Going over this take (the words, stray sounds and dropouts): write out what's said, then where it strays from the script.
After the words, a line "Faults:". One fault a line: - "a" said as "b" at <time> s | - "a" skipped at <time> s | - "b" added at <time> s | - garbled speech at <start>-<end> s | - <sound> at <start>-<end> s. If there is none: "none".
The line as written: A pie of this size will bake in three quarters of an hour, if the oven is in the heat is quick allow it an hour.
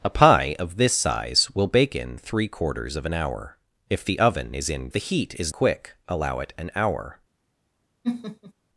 A pie of this size will bake in three quarters of an hour, if the oven is in the heat is quick allow it an hour.
Faults:
- laugh at 8.0-8.5 s